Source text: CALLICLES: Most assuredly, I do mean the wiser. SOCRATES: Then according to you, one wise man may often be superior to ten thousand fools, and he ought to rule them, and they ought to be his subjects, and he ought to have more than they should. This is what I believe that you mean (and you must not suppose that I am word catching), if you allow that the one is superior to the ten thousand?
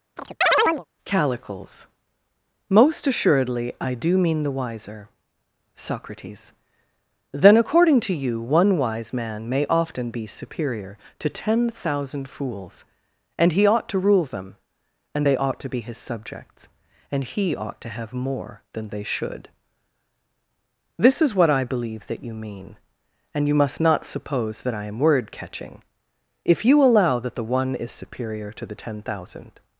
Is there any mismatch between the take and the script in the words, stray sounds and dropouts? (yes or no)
yes